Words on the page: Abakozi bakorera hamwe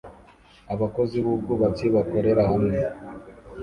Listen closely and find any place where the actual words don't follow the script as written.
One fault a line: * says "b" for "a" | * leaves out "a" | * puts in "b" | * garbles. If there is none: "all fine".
* puts in "b'ubwubatsi"